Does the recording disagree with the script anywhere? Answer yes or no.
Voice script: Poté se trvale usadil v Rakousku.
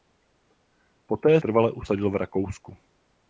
yes